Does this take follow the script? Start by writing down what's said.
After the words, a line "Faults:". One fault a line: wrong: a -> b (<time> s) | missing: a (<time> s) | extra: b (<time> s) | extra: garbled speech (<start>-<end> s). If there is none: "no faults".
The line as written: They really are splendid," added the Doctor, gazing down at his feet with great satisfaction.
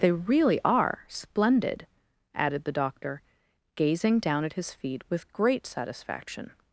They really are splendid," added the Doctor, gazing down at his feet with great satisfaction.
Faults:
no faults